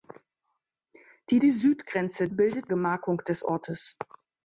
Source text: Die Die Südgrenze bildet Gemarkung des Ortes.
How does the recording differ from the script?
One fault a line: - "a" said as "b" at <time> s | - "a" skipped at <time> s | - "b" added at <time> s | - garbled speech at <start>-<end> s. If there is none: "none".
none